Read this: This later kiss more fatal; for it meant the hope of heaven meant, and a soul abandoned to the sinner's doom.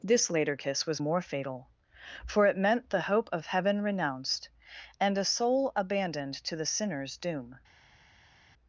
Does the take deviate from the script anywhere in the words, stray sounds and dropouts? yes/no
yes